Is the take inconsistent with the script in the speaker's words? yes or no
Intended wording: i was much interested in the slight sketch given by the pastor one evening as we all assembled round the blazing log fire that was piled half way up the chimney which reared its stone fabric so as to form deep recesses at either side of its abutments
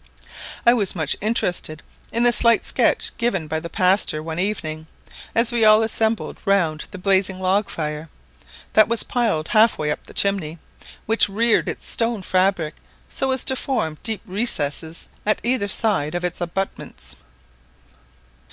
no